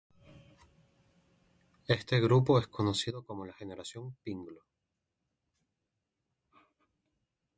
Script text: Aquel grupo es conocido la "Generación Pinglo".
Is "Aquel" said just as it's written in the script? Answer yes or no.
no